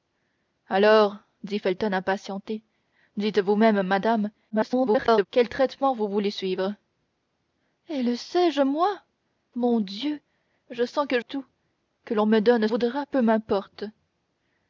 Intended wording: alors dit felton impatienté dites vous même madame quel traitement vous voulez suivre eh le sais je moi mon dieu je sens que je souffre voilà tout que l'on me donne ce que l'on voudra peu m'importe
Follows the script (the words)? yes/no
no